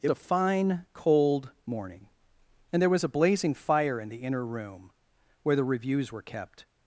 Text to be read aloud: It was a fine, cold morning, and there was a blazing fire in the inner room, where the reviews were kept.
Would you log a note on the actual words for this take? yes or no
yes